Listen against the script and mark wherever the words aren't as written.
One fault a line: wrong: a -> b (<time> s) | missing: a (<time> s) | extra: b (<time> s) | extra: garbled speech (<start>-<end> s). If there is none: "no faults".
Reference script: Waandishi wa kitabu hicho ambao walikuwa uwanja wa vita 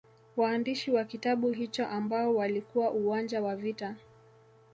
no faults